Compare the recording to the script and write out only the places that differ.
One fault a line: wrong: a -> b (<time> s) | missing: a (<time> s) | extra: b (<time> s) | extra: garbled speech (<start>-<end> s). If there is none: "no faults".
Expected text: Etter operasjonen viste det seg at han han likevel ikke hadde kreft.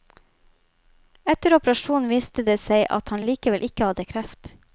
no faults